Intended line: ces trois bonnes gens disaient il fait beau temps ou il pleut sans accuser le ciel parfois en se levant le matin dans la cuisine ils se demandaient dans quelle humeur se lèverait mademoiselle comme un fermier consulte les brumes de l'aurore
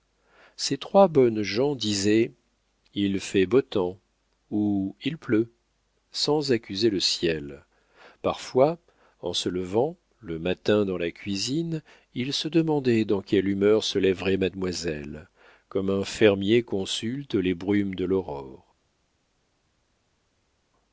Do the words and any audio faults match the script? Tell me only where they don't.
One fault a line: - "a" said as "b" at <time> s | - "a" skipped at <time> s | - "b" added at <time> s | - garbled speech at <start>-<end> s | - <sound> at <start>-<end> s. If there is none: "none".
none